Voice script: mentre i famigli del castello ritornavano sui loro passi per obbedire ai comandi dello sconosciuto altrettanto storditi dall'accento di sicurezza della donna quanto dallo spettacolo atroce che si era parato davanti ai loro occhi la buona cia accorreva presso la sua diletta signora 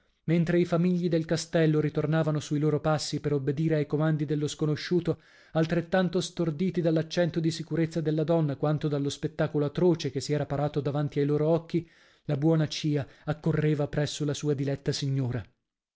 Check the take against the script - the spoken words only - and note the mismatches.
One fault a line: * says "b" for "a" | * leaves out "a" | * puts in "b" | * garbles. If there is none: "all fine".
all fine